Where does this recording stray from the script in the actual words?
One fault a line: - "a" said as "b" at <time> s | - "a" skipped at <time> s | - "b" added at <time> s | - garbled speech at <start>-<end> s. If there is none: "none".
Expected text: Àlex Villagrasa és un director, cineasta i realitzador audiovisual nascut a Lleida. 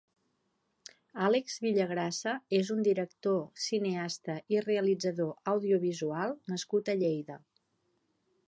none